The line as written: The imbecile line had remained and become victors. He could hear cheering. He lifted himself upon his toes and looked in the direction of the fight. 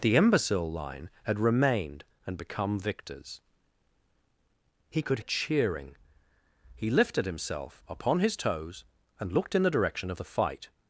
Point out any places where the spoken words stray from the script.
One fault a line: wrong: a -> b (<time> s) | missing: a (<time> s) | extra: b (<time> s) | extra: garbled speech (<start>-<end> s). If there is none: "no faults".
missing: hear (5.2 s)